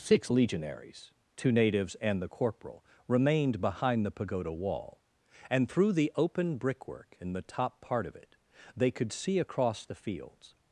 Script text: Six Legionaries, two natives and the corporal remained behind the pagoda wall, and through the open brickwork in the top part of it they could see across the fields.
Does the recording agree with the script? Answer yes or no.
yes